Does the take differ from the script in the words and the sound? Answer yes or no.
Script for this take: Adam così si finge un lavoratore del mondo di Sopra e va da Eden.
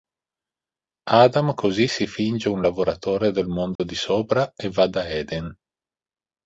yes